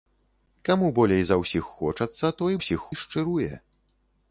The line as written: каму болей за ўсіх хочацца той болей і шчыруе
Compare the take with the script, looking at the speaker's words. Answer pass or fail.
fail